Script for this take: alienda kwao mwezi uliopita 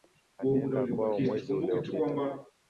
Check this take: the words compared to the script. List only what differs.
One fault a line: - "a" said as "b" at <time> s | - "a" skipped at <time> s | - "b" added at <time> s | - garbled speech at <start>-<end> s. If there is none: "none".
none